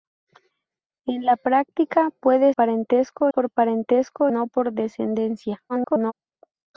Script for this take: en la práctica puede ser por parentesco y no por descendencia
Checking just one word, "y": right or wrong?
wrong